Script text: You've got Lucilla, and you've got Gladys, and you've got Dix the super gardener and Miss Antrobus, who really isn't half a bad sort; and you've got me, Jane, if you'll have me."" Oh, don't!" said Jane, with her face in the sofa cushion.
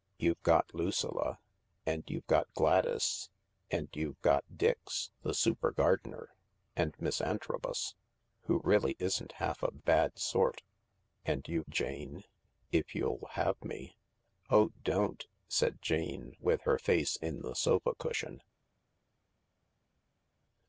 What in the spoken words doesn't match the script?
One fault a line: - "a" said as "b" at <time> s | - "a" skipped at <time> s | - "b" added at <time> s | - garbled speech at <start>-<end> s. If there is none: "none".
- "got me" skipped at 11.7 s